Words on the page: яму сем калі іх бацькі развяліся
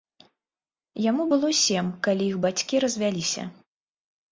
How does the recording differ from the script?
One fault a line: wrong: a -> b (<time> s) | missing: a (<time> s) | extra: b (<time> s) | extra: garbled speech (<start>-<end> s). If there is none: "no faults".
extra: было (1.3 s)